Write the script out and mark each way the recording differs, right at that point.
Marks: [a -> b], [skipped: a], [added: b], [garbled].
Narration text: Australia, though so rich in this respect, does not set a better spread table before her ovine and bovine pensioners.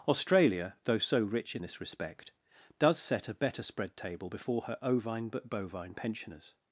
Australia, though so rich in this respect, does [skipped: not] set a better spread table before her ovine [and -> but] bovine pensioners.